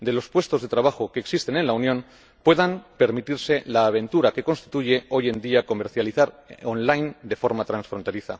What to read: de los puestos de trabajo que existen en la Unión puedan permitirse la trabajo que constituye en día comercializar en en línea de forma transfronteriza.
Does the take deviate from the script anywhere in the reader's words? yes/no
yes